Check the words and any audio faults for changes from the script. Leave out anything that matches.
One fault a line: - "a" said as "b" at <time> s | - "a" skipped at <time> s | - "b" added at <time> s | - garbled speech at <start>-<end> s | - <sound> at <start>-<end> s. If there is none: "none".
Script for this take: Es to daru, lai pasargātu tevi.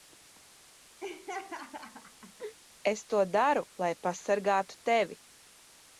- laugh at 1.0-2.6 s